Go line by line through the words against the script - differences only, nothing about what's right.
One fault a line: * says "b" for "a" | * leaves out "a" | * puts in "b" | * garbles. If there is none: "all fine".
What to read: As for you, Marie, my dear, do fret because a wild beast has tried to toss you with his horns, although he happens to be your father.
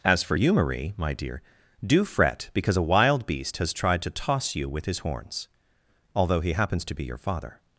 all fine